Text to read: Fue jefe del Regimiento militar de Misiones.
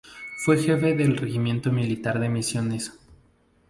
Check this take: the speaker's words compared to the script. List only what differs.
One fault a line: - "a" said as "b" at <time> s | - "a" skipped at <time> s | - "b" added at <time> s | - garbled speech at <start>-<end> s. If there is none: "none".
none